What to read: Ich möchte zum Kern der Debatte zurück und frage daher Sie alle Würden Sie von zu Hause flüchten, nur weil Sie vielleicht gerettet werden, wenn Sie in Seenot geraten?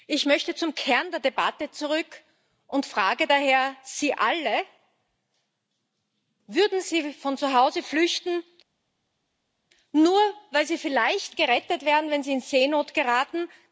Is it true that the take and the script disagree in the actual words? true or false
false